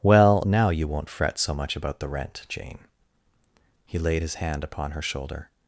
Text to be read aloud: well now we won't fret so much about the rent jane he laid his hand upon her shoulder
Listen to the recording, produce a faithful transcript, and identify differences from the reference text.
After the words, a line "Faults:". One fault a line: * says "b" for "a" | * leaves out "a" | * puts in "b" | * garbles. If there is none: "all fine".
well now you won't fret so much about the rent jane he laid his hand upon her shoulder
Faults:
* says "you" for "we"